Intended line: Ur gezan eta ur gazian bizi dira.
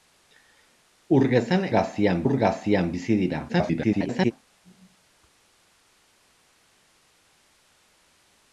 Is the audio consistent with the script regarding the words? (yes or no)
no